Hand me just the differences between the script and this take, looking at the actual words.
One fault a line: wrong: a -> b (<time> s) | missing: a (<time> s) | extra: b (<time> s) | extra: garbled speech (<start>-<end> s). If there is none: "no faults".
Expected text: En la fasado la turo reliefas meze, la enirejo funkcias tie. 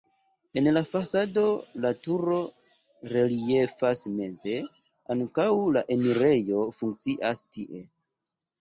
extra: ankaŭ (5.2 s)